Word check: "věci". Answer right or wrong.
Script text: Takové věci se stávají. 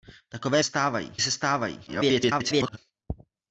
wrong